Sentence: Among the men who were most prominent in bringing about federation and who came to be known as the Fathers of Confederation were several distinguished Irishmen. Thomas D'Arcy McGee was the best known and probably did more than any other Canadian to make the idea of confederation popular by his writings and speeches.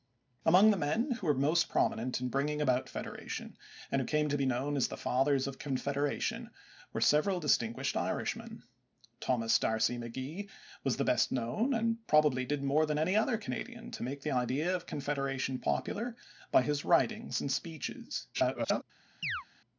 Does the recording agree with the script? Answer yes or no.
no